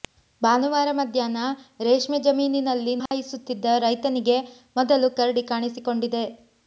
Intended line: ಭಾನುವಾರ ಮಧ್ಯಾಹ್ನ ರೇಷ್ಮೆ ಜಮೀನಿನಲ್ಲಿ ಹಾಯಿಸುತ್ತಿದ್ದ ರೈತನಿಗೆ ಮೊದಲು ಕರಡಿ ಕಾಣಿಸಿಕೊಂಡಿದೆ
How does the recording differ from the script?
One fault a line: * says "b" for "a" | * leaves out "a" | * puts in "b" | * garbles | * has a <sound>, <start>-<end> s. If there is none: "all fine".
* has a dropout, 3.1-3.1 s